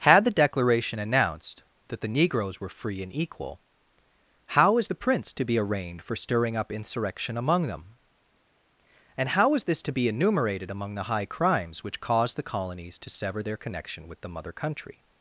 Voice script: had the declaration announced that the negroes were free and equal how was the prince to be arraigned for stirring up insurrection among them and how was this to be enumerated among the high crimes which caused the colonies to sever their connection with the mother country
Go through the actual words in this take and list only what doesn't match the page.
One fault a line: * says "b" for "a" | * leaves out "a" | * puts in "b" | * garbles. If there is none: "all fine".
* says "is" for "was"
* says "is" for "was"